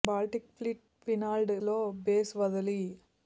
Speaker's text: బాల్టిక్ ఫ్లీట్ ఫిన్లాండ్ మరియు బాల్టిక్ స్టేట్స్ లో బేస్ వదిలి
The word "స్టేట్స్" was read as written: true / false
false